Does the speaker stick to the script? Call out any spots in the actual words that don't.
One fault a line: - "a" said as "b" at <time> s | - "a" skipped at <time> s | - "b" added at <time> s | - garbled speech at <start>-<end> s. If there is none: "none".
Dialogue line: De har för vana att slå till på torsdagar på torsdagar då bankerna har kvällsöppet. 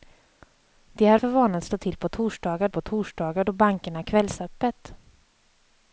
none